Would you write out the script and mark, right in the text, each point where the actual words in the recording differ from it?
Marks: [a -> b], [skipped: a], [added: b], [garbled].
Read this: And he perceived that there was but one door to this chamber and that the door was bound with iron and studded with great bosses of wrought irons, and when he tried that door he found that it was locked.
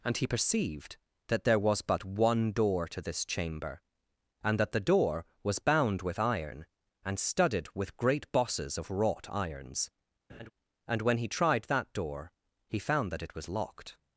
And he perceived that there was but one door to this chamber and that the door was bound with iron and studded with great bosses of wrought irons, and when he tried that door he found that it was locked.